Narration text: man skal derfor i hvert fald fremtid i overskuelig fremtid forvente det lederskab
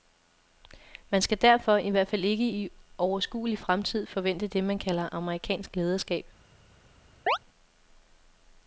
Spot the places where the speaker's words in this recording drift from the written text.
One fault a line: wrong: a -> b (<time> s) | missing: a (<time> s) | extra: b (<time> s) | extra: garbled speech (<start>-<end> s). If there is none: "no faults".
wrong: fremtid -> ikke (2.2 s)
extra: man kalder amerikansk (4.6 s)